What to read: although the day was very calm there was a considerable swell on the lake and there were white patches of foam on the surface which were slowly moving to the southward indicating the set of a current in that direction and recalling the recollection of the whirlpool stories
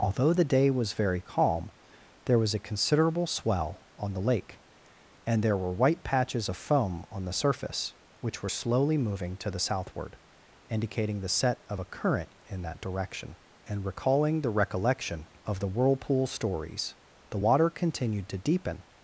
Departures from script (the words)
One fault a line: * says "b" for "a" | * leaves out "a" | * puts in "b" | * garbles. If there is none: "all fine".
* puts in "the water continued to deepen"